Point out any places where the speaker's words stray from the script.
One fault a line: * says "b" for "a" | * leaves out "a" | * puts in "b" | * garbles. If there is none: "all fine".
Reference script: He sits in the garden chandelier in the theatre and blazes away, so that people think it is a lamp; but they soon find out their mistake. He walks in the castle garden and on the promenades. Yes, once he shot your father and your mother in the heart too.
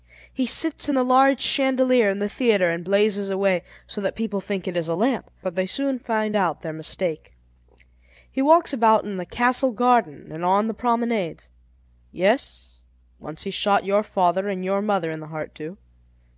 * says "large" for "garden"
* puts in "about"